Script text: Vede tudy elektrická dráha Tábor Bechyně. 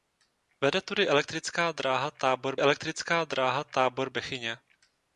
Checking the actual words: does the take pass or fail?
fail